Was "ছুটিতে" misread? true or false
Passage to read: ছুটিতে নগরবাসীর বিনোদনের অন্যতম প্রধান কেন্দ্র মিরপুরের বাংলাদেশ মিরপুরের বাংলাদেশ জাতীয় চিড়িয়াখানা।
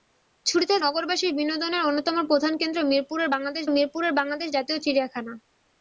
false